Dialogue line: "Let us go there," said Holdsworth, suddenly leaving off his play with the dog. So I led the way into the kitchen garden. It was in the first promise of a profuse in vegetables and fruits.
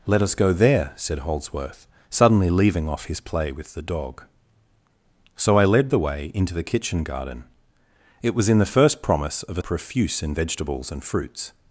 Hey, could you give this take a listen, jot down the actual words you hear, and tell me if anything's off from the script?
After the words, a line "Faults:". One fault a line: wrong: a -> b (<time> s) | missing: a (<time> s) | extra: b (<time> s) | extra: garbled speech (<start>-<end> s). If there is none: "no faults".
"Let us go there," said Holdsworth, suddenly leaving off his play with the dog. So I led the way into the kitchen garden. It was in the first promise of a profuse in vegetables and fruits.
Faults:
no faults